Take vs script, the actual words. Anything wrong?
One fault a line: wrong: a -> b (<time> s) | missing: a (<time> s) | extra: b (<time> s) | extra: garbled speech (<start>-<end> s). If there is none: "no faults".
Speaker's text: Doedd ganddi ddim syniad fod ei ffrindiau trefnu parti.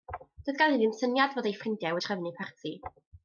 no faults